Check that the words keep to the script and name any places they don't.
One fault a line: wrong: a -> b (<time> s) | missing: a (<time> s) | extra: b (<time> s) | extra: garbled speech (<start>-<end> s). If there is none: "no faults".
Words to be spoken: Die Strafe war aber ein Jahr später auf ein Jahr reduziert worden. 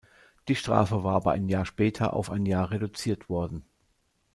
no faults